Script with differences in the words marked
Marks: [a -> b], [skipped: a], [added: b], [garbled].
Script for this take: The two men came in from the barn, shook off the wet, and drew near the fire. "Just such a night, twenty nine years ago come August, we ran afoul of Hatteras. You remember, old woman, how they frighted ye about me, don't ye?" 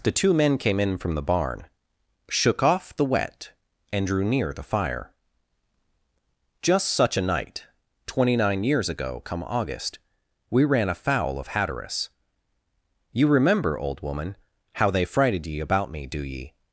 The two men came in from the barn, shook off the wet, and drew near the fire. "Just such a night, twenty nine years ago come August, we ran afoul of Hatteras. You remember, old woman, how they frighted ye about me, [don't -> do] ye?"